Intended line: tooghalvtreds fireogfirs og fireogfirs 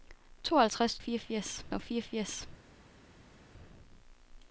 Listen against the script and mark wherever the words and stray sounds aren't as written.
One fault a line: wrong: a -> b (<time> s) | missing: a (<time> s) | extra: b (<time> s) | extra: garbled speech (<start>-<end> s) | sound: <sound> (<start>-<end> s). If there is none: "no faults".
no faults